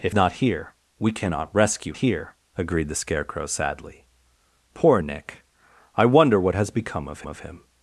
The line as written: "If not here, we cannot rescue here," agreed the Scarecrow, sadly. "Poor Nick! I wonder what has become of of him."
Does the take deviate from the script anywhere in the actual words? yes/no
no